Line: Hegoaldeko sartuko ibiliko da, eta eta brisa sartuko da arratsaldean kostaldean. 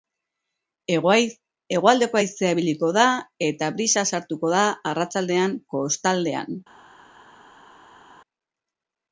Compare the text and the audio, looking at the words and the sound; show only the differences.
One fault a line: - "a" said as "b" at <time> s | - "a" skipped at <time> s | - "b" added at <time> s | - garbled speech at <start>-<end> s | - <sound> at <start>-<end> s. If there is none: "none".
- "sartuko" said as "haizea" at 2.2 s
- "eta" skipped at 3.7 s